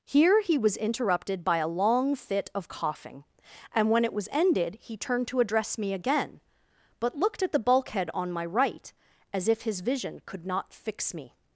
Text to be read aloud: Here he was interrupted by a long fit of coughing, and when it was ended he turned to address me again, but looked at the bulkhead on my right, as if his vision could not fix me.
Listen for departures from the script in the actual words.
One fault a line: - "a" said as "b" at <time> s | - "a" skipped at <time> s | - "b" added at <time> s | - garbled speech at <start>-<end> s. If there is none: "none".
none